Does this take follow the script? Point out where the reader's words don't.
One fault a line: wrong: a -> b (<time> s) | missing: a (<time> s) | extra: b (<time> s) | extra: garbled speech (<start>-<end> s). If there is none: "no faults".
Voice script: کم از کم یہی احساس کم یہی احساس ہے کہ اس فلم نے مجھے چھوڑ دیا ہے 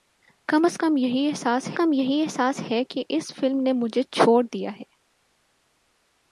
no faults